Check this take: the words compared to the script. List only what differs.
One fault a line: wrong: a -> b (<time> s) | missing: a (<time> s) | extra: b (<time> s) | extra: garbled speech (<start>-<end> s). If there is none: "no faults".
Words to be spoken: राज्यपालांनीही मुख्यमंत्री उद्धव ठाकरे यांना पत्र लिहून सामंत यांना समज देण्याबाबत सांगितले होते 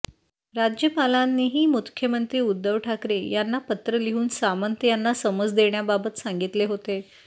no faults